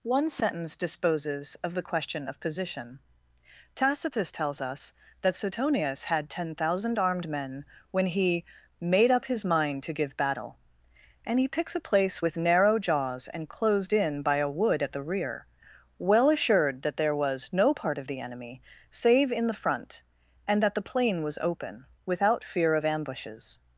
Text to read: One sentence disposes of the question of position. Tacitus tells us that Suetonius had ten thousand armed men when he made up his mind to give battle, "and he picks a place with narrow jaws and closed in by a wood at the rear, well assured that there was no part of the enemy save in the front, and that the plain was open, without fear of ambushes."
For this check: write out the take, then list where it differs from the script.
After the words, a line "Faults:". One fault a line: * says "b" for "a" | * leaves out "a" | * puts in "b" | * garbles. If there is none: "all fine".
One sentence disposes of the question of position. Tacitus tells us that Suetonius had ten thousand armed men when he made up his mind to give battle, "and he picks a place with narrow jaws and closed in by a wood at the rear, well assured that there was no part of the enemy save in the front, and that the plain was open, without fear of ambushes."
Faults:
all fine